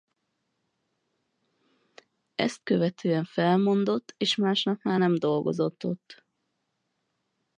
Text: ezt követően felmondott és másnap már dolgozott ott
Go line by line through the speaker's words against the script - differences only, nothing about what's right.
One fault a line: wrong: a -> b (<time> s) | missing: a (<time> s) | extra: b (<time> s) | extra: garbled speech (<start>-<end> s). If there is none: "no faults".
extra: nem (5.0 s)